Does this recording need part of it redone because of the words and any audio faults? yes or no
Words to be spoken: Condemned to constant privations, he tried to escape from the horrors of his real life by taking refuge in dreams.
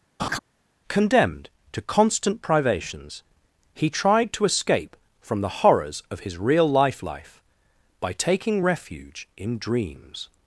yes